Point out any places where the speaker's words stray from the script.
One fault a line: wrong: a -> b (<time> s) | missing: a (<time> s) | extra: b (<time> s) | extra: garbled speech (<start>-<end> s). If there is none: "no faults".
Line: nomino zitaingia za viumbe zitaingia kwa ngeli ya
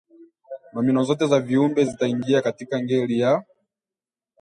wrong: zitaingia -> zote (1.0 s)
wrong: kwa -> katika (2.4 s)